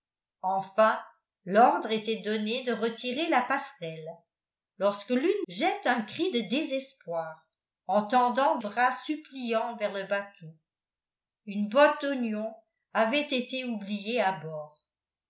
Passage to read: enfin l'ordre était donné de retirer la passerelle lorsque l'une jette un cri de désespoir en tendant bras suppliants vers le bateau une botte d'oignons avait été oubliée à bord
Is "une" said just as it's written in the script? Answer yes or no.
yes